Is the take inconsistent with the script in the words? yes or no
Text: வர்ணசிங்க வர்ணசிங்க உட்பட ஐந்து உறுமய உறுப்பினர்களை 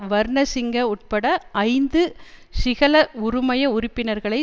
yes